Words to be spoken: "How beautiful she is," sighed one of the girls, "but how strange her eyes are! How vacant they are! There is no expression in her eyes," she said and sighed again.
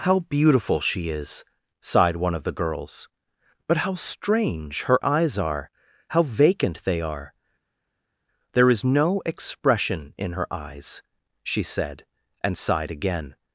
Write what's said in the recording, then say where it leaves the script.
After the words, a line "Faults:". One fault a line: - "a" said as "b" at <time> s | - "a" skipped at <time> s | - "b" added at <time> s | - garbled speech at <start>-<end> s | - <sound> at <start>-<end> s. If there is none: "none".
"How beautiful she is," sighed one of the girls, "but how strange her eyes are! How vacant they are! There is no expression in her eyes," she said and sighed again.
Faults:
none